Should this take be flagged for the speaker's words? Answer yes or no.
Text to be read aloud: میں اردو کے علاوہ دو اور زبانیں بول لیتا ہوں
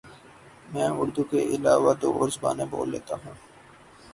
no